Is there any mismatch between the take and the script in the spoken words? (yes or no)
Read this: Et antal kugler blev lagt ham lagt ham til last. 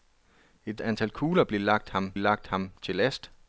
no